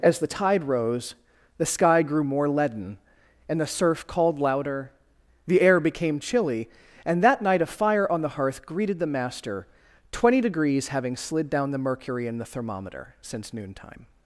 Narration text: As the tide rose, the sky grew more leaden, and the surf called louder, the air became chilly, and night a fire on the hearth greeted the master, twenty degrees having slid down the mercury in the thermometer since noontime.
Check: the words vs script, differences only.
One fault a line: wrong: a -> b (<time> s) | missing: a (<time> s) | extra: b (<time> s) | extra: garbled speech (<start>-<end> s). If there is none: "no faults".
extra: that (7.2 s)